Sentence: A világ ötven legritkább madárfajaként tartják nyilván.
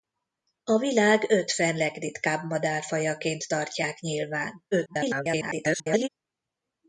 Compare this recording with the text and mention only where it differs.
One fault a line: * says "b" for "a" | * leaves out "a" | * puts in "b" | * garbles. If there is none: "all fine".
* garbles